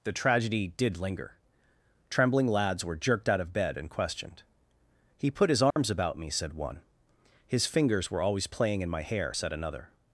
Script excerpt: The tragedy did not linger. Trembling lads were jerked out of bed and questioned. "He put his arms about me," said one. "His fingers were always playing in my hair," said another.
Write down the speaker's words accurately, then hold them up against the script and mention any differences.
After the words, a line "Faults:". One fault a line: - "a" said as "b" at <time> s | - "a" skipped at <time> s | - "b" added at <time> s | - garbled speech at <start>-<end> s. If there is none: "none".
The tragedy did linger. Trembling lads were jerked out of bed and questioned. "He put his arms about me," said one. "His fingers were always playing in my hair," said another.
Faults:
- "not" skipped at 1.0 s